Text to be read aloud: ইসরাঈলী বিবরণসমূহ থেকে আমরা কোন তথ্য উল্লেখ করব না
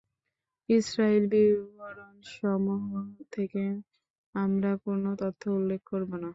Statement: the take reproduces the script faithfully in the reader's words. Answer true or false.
true